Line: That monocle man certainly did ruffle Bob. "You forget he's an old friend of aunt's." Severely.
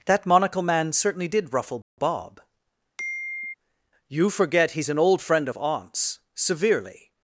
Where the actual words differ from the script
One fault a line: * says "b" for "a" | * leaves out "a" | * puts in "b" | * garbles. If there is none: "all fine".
all fine